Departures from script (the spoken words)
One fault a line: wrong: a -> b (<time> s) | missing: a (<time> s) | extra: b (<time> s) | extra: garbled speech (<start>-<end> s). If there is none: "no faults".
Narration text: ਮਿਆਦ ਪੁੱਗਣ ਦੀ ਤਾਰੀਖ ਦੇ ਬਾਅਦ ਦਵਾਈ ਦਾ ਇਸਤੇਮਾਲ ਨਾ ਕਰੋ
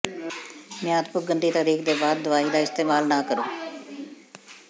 no faults